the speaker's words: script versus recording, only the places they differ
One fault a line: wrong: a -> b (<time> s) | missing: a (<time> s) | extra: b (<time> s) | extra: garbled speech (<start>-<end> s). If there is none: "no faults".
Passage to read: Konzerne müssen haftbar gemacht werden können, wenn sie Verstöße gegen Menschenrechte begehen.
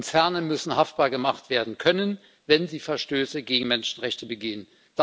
no faults